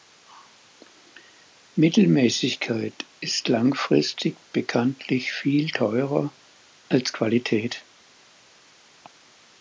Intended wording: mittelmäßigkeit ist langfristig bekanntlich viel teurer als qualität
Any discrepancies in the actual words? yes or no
no